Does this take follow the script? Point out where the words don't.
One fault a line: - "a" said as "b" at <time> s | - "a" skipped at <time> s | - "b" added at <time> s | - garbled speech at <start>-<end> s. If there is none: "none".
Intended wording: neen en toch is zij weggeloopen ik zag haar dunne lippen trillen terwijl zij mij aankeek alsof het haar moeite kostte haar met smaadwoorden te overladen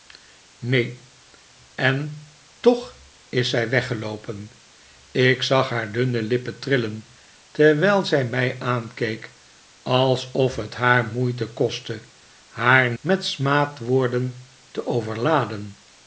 none